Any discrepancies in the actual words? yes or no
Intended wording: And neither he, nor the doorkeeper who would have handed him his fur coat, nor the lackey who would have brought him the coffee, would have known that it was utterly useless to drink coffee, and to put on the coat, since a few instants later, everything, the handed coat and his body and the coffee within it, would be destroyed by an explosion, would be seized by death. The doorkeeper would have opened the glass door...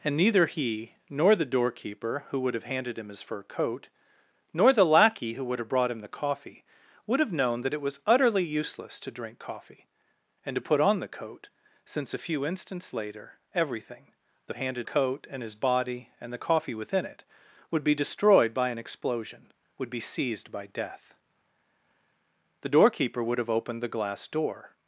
no